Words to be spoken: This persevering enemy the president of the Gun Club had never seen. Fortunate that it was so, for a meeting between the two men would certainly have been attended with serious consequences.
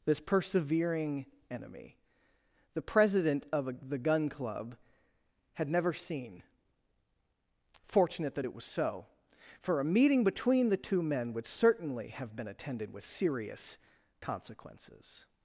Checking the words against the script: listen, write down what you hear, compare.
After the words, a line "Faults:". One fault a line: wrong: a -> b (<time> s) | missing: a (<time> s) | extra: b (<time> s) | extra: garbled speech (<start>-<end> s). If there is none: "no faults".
This persevering enemy the president of a the Gun Club had never seen. Fortunate that it was so, for a meeting between the two men would certainly have been attended with serious consequences.
Faults:
extra: a (3.7 s)